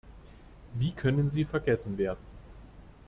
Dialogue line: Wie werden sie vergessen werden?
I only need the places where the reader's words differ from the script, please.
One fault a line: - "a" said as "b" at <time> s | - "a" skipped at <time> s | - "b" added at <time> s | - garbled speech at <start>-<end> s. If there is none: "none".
- "werden" said as "können" at 0.9 s